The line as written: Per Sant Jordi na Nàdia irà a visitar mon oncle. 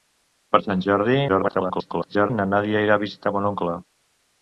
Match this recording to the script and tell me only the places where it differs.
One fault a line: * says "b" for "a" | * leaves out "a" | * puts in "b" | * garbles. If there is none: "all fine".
* garbles